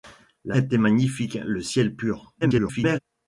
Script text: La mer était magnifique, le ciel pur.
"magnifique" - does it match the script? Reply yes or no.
yes